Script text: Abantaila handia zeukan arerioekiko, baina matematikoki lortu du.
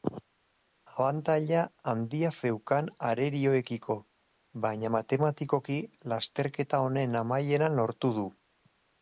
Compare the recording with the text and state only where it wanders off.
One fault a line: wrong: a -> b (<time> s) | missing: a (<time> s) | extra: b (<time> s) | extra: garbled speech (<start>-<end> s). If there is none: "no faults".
extra: lasterketa honen amaieran (6.1 s)